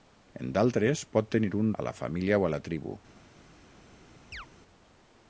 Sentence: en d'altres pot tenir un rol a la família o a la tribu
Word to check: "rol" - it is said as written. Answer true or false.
false